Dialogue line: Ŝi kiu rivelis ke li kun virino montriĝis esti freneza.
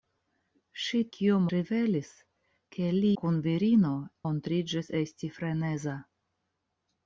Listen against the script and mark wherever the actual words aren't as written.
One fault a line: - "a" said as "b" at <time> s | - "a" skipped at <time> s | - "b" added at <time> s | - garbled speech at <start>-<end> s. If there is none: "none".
none